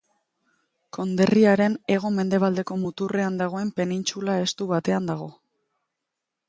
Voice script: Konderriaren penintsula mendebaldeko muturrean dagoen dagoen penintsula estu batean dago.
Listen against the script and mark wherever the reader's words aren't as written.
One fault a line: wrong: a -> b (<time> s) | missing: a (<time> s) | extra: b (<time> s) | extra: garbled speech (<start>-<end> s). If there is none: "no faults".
wrong: penintsula -> hego (1.9 s)
missing: dagoen (3.7 s)